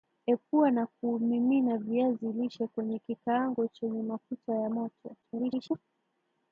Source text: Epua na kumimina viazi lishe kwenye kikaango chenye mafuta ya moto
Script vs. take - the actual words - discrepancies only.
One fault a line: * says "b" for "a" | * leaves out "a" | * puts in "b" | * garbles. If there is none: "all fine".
* garbles